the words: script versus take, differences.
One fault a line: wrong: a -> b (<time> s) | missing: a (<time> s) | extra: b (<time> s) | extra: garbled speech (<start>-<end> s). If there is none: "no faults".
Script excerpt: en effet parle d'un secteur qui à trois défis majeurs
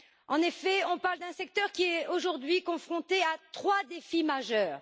extra: on (0.8 s)
extra: est aujourd'hui confronté (1.8 s)